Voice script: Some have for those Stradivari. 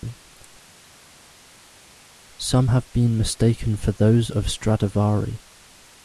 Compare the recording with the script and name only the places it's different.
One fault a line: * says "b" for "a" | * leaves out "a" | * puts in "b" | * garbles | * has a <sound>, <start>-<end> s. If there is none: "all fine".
* puts in "been mistaken"
* puts in "of"